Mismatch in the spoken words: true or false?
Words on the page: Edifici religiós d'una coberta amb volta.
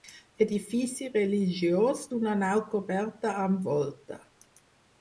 true